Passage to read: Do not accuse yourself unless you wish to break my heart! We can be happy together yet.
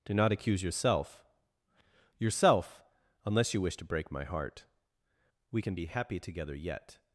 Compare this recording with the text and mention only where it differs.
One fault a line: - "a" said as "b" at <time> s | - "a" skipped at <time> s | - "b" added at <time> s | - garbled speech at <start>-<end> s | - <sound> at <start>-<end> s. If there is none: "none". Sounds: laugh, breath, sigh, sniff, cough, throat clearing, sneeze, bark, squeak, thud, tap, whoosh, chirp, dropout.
- "yourself" added at 2.2 s